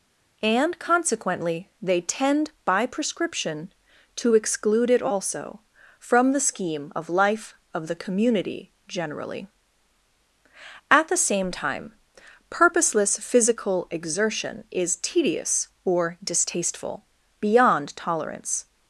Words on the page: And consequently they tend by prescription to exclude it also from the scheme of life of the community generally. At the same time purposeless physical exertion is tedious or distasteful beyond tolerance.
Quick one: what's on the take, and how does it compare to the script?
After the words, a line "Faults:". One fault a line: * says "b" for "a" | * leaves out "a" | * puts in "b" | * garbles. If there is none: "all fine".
And consequently they tend by prescription to exclude it also from the scheme of life of the community generally. At the same time purposeless physical exertion is tedious or distasteful beyond tolerance.
Faults:
all fine